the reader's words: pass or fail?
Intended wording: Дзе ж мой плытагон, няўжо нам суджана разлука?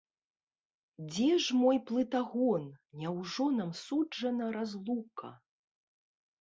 pass